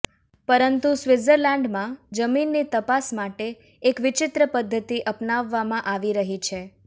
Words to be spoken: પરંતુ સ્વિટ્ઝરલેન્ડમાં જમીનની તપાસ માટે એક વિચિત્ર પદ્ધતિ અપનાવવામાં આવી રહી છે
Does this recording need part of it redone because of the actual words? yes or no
no